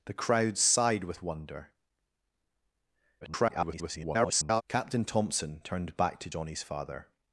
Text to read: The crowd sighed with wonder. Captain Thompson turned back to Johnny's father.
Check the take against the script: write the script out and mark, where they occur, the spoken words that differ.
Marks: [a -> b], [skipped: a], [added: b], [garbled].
The crowd sighed with wonder. [garbled] Captain Thompson turned back to Johnny's father.